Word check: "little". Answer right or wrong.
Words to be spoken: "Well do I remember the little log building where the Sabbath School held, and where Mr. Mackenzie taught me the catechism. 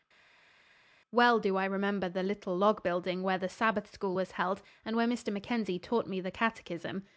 right